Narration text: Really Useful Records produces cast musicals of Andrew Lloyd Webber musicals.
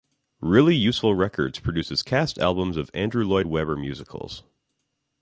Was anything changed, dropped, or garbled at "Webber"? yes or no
no